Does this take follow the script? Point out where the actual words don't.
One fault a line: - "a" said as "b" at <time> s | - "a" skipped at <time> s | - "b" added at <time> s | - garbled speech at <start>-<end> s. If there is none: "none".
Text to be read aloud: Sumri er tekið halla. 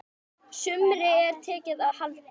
none